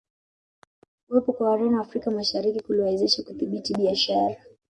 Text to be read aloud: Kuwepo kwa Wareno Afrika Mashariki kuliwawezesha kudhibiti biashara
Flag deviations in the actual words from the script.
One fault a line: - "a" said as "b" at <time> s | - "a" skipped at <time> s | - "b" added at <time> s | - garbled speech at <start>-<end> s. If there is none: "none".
none